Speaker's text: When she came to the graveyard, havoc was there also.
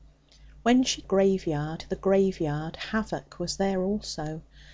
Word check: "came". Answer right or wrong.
wrong